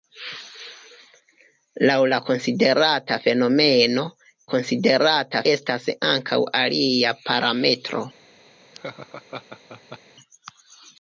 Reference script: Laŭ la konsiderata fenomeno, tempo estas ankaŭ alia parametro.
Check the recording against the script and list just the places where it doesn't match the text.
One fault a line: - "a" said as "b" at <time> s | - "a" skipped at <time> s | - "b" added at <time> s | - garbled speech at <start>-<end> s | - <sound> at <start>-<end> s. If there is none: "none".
- "tempo" said as "konsiderata" at 4.5 s
- laugh at 8.7-10.0 s